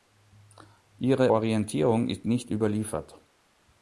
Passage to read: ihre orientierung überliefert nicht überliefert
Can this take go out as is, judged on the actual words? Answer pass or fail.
fail